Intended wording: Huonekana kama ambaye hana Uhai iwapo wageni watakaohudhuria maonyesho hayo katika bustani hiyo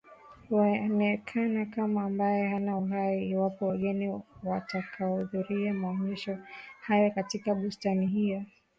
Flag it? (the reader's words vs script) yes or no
no